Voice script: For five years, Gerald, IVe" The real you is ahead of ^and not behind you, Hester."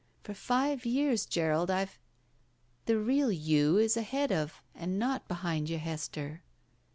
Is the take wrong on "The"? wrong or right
right